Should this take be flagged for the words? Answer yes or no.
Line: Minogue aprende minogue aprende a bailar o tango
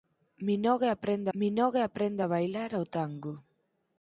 no